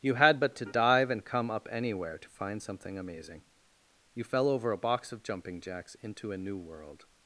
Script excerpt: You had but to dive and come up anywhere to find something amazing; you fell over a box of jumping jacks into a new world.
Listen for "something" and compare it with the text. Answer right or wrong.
right